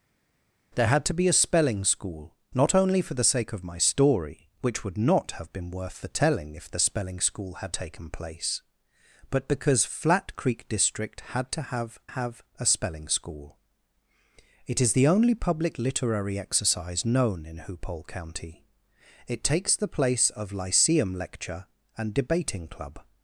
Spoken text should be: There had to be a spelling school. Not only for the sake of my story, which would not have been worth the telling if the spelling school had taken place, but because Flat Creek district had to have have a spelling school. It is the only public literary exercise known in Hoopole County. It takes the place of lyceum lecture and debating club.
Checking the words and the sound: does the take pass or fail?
pass